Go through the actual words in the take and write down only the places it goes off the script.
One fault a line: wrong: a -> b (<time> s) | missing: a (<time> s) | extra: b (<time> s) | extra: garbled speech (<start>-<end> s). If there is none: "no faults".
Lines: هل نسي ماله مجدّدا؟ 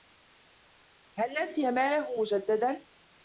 no faults